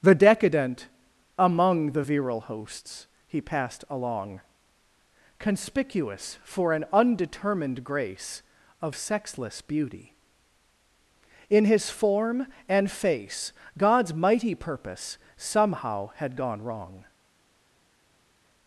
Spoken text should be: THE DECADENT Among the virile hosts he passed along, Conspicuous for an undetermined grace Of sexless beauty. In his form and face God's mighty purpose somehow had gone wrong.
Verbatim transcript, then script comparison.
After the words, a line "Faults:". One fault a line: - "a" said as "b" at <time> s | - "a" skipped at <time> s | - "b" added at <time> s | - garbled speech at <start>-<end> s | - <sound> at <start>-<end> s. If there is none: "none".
THE DECADENT Among the virile hosts he passed along, Conspicuous for an undetermined grace Of sexless beauty. In his form and face God's mighty purpose somehow had gone wrong.
Faults:
none